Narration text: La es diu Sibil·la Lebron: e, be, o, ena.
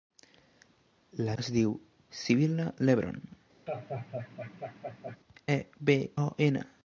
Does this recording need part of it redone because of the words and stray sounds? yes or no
yes